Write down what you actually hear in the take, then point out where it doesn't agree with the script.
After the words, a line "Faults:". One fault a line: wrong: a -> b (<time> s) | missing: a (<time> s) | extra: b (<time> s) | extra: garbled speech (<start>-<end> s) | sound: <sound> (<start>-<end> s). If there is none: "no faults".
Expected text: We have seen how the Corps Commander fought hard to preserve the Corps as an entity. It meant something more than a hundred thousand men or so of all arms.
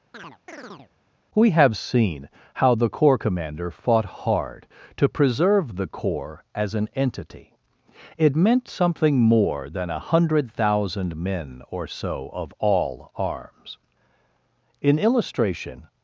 We have seen how the Corps Commander fought hard to preserve the Corps as an entity. It meant something more than a hundred thousand men or so of all arms. In illustration
Faults:
sound: chirp (0.1-0.9 s)
extra: In illustration (14.8 s)